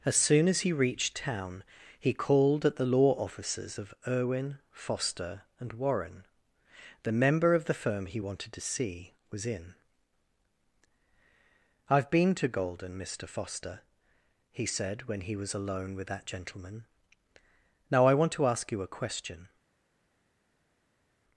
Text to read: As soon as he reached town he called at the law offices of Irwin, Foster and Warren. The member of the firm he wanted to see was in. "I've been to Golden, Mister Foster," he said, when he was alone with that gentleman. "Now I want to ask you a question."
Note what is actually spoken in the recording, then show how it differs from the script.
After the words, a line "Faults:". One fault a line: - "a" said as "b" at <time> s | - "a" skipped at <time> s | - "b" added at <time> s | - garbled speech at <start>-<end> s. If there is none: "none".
As soon as he reached town he called at the law offices of Irwin, Foster and Warren. The member of the firm he wanted to see was in. "I've been to Golden, Mister Foster," he said, when he was alone with that gentleman. "Now I want to ask you a question."
Faults:
none